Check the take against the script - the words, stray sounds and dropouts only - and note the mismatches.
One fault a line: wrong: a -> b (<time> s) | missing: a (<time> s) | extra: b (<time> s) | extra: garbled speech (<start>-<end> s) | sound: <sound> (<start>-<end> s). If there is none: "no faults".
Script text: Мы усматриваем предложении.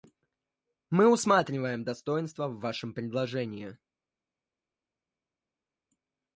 extra: достоинства в вашем (1.8 s)